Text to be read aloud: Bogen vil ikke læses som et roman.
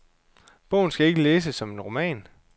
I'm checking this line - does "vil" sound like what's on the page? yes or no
no